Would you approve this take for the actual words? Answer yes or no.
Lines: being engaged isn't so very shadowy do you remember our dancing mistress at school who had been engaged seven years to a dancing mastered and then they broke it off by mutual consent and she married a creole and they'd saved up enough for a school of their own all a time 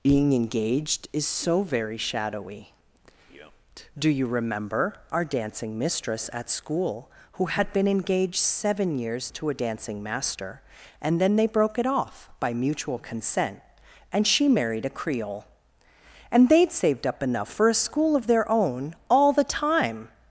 no